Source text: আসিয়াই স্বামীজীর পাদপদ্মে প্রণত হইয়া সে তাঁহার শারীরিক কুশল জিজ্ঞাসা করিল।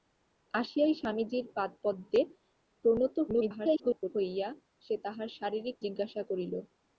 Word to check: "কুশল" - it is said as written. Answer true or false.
false